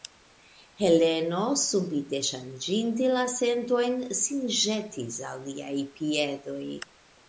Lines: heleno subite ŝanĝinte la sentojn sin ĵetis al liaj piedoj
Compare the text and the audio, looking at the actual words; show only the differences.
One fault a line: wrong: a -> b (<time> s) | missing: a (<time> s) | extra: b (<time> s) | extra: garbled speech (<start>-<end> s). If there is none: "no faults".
no faults